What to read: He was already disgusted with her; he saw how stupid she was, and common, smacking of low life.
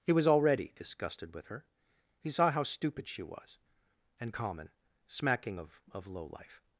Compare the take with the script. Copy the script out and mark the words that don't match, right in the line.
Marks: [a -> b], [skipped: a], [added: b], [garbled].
He was already disgusted with her; he saw how stupid she was, and common, smacking of [added: of] low life.